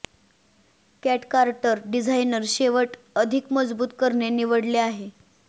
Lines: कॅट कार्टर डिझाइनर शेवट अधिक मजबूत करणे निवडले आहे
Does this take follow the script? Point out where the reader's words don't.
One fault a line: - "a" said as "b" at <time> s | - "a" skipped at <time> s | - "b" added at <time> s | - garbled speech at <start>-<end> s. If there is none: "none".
none